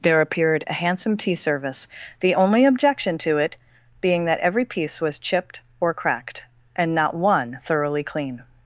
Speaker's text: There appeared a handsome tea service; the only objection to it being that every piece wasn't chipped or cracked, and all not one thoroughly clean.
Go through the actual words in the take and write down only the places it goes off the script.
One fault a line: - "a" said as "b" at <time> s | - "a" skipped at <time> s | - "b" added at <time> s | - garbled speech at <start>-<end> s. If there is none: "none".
- "wasn't" said as "was" at 5.0 s
- "all" skipped at 7.0 s